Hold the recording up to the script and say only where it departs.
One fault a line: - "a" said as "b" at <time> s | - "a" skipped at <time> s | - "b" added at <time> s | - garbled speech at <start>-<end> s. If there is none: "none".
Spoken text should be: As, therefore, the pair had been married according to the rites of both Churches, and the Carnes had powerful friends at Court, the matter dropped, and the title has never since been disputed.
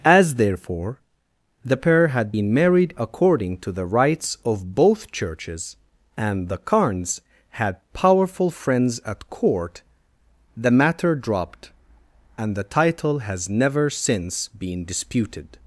none